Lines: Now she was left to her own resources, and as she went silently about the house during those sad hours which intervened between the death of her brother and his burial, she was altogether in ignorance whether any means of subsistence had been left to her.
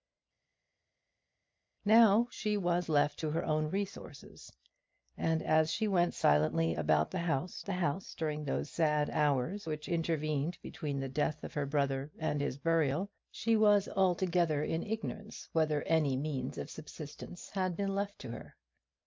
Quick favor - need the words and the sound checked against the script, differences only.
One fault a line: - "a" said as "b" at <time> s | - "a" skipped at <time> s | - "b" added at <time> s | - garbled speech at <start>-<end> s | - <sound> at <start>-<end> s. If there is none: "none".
- "the house" added at 7.6 s